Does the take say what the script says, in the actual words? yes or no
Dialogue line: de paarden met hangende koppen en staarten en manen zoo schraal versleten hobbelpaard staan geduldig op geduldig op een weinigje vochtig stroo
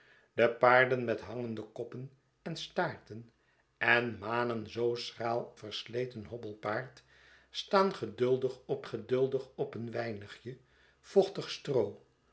yes